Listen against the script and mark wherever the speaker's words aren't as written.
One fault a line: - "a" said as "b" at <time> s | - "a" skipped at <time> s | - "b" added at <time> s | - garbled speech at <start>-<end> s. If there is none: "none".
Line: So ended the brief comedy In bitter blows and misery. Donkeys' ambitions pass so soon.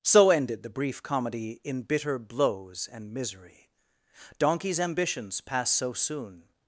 none